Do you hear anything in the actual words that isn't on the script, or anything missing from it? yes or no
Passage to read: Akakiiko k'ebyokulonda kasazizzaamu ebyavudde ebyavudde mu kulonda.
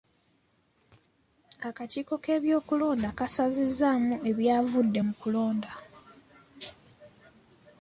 yes